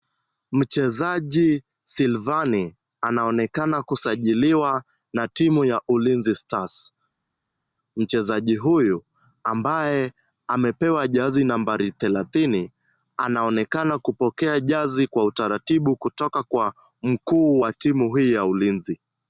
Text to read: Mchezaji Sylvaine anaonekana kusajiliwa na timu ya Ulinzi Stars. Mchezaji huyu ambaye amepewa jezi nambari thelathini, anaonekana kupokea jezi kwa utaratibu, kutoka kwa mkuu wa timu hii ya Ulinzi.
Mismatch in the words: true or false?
false